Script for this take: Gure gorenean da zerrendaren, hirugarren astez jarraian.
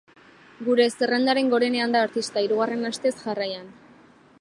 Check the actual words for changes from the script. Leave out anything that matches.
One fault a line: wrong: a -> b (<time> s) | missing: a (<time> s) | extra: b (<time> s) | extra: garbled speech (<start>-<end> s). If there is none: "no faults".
extra: zerrendaren (0.9 s)
wrong: zerrendaren -> artista (2.0 s)